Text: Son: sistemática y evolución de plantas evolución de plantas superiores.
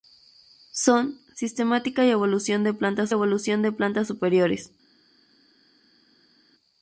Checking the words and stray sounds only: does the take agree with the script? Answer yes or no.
yes